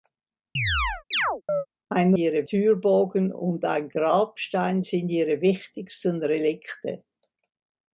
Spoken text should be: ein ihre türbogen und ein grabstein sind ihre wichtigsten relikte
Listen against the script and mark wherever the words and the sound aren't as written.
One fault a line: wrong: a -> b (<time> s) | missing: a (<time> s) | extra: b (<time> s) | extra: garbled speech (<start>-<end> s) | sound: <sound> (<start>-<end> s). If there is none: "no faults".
sound: chirp (0.6-1.7 s)